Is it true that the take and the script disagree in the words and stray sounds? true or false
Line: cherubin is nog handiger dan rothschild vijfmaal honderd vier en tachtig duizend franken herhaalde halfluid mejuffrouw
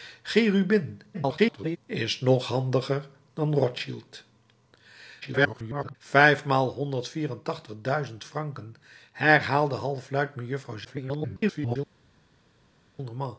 true